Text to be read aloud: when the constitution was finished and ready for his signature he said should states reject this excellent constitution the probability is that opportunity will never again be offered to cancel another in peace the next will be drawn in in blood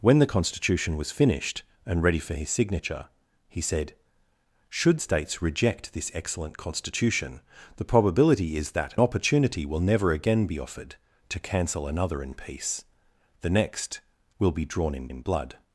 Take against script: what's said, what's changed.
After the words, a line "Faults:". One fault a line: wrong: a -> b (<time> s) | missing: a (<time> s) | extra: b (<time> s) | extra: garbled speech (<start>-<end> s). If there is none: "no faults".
when the constitution was finished and ready for his signature he said should states reject this excellent constitution the probability is that opportunity will never again be offered to cancel another in peace the next will be drawn in in blood
Faults:
no faults